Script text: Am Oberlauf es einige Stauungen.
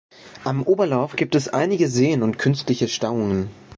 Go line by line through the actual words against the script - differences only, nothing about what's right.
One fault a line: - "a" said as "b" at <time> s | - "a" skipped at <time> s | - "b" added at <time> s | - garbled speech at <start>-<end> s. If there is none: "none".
- "gibt" added at 1.1 s
- "Seen und künstliche" added at 1.9 s